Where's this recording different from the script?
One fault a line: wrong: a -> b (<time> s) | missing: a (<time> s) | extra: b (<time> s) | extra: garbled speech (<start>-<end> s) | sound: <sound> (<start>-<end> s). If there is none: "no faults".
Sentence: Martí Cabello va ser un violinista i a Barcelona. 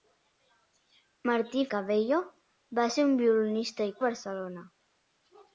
no faults